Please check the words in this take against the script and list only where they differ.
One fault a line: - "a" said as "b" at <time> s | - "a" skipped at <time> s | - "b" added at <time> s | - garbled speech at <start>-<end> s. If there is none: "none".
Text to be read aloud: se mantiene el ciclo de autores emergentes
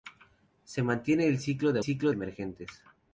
- "autores" said as "ciclo" at 1.8 s